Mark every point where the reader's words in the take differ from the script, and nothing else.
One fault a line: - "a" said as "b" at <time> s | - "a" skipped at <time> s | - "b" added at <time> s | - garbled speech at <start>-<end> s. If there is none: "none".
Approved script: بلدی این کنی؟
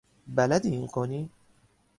none